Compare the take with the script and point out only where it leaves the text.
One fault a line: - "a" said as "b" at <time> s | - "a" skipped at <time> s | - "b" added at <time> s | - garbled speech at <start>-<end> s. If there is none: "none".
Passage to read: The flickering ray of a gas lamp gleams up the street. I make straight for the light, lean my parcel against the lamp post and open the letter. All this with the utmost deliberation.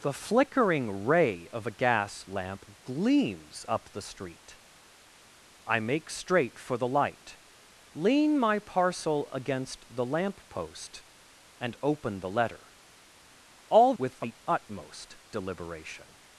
- "this" skipped at 13.9 s